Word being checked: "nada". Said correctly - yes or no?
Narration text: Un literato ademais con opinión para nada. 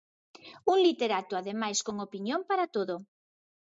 no